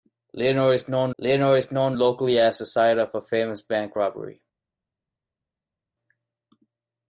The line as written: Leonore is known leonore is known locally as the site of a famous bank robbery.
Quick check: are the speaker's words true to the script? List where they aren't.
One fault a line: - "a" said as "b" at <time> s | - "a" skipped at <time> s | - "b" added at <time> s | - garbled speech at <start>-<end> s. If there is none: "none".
none